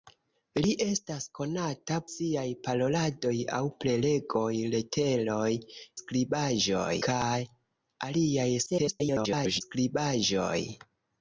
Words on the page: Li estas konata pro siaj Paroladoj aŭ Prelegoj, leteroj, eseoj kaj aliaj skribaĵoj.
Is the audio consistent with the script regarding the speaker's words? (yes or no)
no